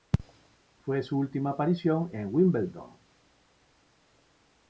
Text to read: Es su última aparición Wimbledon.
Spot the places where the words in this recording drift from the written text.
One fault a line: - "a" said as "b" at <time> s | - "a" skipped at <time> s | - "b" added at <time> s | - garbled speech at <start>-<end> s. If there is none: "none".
- "Es" said as "Fue" at 0.8 s
- "en" added at 2.1 s